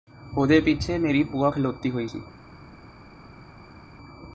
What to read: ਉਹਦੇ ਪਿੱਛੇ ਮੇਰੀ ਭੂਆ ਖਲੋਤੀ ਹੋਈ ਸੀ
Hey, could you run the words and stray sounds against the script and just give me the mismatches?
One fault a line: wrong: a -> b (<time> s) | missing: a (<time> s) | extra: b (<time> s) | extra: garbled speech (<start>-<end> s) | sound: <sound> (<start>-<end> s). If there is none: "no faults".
no faults